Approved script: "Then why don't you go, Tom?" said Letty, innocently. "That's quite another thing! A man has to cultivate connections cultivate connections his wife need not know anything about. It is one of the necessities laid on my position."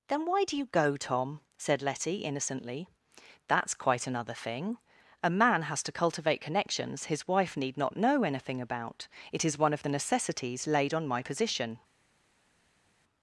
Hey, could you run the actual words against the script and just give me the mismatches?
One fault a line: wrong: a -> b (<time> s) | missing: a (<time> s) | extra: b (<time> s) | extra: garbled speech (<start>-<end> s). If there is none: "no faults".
wrong: don't -> do (0.5 s)
missing: cultivate connections (7.0 s)